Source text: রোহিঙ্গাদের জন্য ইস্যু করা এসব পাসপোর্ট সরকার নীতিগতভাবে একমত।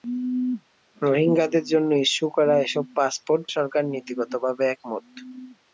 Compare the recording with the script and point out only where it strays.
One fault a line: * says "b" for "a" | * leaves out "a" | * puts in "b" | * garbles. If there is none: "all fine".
all fine